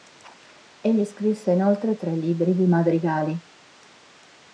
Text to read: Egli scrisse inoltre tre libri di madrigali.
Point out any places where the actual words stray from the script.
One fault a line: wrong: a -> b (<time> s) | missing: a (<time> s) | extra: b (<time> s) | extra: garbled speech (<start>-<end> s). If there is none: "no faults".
no faults